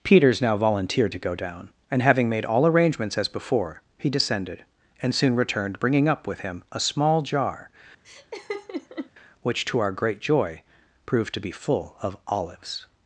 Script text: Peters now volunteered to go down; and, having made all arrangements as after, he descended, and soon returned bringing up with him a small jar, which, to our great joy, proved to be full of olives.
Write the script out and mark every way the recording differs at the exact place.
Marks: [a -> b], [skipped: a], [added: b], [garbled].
Peters now volunteered to go down; and, having made all arrangements as [after, -> before] he descended, and soon returned bringing up with him a small jar, which, to our great joy, proved to be full of olives.